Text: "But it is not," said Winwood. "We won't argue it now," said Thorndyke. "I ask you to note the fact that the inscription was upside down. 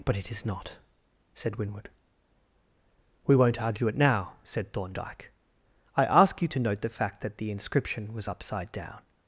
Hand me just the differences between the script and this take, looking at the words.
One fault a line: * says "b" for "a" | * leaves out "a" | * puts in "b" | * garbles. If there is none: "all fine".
all fine